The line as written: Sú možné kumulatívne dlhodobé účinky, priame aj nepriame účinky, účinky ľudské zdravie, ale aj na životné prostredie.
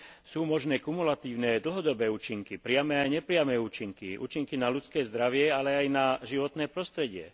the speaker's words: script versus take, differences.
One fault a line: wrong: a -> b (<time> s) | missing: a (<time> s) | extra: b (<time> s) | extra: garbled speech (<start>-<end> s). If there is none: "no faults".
extra: na (4.5 s)